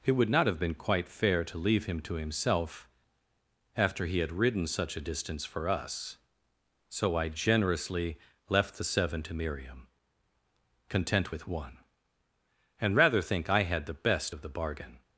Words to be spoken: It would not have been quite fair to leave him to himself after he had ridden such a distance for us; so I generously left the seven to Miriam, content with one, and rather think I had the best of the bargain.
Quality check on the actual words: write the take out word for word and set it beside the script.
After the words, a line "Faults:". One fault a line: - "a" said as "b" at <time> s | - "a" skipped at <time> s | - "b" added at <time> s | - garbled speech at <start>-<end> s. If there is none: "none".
It would not have been quite fair to leave him to himself after he had ridden such a distance for us; so I generously left the seven to Miriam, content with one, and rather think I had the best of the bargain.
Faults:
none